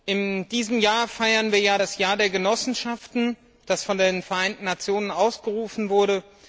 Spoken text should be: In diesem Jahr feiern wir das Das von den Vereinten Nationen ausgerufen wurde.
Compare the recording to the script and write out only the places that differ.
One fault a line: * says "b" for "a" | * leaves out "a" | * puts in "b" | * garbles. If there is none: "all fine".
* puts in "Jahr der Genossenschaften"